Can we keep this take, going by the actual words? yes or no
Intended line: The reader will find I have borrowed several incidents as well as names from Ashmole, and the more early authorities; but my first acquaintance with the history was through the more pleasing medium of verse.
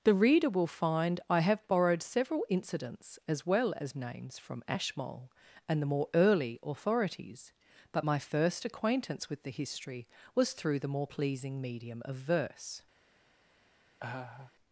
yes